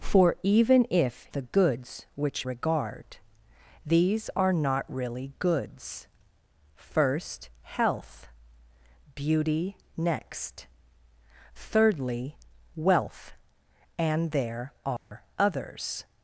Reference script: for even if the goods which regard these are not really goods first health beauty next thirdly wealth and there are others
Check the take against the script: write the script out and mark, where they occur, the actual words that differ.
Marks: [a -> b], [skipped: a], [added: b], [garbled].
for even if the goods which regard these are not really goods first health beauty next thirdly wealth and there are others